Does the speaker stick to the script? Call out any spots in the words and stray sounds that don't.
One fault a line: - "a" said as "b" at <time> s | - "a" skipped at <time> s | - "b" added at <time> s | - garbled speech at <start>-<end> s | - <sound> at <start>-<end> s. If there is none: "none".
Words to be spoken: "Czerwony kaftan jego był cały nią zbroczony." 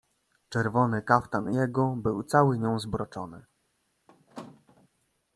- squeak at 4.1-4.9 s